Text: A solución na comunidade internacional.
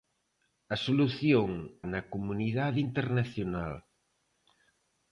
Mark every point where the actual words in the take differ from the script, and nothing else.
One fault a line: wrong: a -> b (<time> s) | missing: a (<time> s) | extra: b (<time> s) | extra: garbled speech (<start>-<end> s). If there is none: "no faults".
no faults